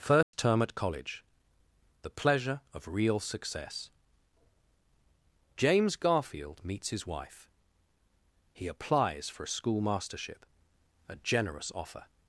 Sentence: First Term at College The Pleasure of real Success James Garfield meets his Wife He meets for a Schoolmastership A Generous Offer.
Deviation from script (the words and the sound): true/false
true